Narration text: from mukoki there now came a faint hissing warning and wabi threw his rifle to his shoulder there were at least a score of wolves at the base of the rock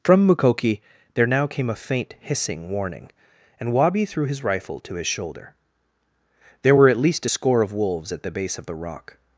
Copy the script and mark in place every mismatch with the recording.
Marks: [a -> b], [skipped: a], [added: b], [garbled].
from mukoki there now came a faint hissing warning and wabi threw his rifle to his shoulder there were at least a score of wolves at the base of the rock